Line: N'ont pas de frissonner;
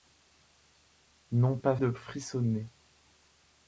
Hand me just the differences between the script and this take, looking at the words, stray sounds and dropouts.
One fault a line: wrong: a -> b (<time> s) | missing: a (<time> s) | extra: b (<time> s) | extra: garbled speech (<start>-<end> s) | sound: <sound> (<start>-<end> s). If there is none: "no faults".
no faults